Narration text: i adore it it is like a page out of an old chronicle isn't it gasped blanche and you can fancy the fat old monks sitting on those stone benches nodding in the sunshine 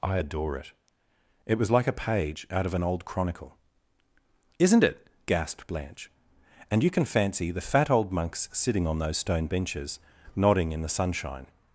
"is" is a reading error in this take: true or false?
true